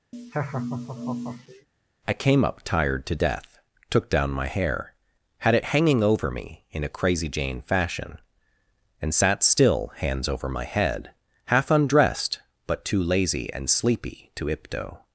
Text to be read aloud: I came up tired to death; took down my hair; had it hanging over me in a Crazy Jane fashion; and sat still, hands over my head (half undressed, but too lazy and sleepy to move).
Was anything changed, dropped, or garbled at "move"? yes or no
yes